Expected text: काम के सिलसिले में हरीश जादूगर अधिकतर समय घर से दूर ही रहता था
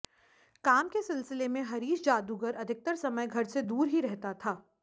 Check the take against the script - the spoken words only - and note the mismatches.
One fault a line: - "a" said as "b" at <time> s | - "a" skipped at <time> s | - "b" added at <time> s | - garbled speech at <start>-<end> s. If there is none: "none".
none